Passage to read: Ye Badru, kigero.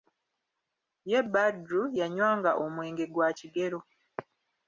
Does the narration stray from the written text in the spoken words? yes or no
yes